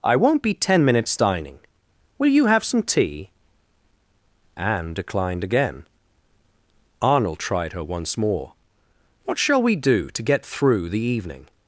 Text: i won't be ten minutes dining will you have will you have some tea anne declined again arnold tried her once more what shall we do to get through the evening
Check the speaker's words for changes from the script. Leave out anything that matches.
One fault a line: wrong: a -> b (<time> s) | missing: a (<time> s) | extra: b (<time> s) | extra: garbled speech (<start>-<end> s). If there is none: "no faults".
missing: will you have (2.6 s)